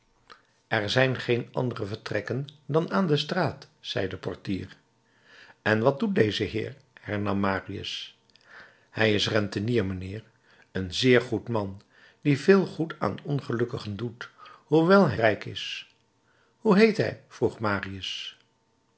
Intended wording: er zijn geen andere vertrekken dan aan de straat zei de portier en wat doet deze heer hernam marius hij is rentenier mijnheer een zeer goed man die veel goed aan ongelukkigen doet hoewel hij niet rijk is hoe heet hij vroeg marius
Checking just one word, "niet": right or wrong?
wrong